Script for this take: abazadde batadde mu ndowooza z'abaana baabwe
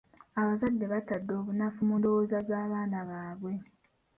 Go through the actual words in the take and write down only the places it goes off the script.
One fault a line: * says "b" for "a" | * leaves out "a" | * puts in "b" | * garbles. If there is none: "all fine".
* puts in "obunafu"